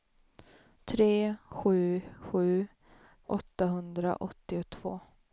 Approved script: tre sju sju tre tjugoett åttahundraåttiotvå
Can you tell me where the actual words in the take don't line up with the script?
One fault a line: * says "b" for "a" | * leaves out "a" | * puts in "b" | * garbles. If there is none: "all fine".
* leaves out "tre tjugoett"